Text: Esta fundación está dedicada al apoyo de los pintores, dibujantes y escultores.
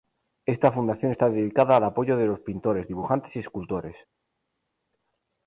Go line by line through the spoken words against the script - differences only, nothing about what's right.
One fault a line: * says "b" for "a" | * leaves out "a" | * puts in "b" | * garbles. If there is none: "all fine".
all fine